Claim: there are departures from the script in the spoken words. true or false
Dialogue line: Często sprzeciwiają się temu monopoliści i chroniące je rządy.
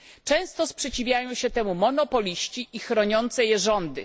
false